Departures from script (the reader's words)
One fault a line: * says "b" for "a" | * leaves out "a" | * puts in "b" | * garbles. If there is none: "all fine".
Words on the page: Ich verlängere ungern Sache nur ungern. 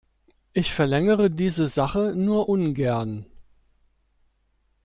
* says "diese" for "ungern"